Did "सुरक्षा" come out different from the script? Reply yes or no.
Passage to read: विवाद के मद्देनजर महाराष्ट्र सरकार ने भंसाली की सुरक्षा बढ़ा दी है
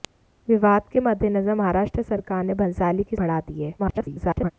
yes